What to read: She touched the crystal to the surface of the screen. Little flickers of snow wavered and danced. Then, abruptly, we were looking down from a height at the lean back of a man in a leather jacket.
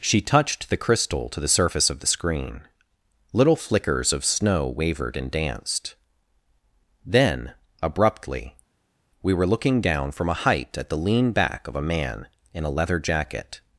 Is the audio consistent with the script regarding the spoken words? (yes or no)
yes